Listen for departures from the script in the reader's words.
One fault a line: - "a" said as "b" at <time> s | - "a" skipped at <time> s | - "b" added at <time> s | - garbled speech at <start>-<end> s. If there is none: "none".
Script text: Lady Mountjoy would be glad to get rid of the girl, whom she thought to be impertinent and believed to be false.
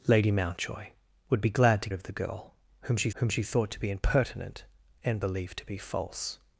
- "get rid" skipped at 1.9 s
- "whom she" added at 3.1 s